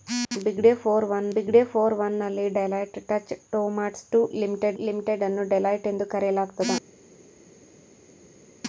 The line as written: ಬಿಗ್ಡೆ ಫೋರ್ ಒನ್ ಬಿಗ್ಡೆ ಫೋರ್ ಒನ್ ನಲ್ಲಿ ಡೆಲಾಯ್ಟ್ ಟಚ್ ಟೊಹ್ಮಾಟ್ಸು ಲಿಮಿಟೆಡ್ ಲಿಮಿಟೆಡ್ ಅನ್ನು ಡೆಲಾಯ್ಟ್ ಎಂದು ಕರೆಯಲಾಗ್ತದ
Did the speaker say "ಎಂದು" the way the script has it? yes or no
yes